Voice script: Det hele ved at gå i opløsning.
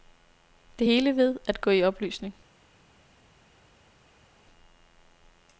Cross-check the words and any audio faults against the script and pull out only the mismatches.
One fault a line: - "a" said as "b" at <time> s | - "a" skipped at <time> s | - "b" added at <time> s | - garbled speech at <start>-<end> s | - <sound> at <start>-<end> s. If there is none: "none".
none